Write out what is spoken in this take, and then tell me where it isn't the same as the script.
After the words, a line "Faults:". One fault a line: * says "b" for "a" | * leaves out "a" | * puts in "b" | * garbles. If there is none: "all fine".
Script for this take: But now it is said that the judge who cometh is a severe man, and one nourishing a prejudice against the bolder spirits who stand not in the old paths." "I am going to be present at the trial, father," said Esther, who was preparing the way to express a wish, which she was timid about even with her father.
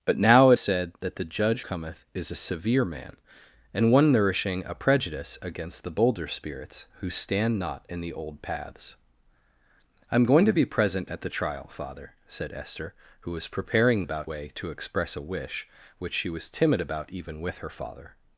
But now it said that the judge cometh is a severe man, and one nourishing a prejudice against the bolder spirits who stand not in the old paths." "I am going to be present at the trial, father," said Esther, who was preparing about way to express a wish, which she was timid about even with her father.
Faults:
* leaves out "is"
* leaves out "who"
* says "about" for "the"